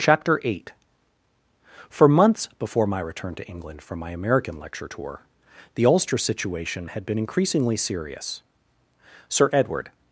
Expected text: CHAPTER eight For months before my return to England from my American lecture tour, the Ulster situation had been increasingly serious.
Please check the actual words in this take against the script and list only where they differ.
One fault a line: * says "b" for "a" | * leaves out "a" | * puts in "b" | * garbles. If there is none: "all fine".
* puts in "Sir Edward"